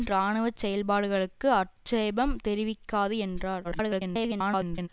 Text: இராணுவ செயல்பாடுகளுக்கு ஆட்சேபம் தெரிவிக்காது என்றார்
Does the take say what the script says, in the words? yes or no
no